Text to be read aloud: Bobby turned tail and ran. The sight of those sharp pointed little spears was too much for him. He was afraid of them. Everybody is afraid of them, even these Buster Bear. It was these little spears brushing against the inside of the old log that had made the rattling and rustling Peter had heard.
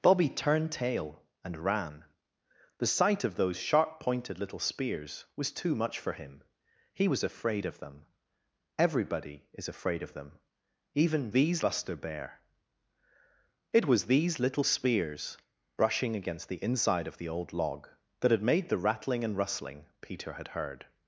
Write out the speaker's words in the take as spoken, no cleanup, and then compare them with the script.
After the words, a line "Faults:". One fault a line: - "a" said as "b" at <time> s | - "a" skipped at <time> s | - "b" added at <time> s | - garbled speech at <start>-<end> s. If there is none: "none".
Bobby turned tail and ran. The sight of those sharp pointed little spears was too much for him. He was afraid of them. Everybody is afraid of them, even these Buster Bear. It was these little spears brushing against the inside of the old log that had made the rattling and rustling Peter had heard.
Faults:
none